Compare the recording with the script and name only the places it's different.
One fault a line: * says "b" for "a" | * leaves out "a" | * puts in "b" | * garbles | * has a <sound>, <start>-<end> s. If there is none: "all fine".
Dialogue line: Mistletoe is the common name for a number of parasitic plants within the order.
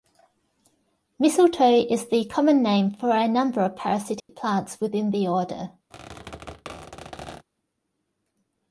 * has a dropout, 4.2-4.3 s
* has a squeak, 5.9-7.5 s